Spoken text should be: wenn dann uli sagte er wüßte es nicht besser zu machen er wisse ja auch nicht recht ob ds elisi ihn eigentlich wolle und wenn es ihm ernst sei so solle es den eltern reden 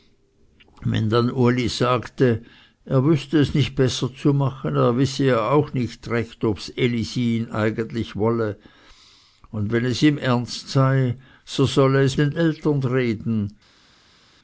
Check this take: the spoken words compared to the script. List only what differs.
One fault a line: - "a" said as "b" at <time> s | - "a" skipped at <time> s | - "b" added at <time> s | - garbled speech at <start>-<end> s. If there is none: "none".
none